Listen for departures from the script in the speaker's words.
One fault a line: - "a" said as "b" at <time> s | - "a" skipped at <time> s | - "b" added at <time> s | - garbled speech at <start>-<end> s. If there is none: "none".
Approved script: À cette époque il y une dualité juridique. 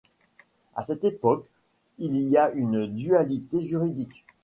- "a" added at 2.4 s